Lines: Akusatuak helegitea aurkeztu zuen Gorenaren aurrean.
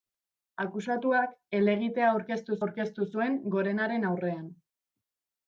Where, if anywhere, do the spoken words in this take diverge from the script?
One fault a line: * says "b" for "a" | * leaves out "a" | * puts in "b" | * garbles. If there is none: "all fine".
* puts in "aurkeztu"